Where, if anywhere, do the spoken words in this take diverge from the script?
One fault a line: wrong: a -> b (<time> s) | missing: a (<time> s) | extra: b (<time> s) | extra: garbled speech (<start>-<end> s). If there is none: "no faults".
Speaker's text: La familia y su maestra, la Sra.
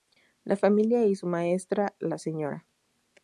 no faults